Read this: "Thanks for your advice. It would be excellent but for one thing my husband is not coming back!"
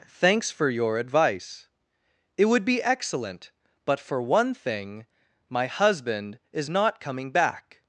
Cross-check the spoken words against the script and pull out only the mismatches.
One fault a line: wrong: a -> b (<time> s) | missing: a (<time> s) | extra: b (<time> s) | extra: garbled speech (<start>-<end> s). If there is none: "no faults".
no faults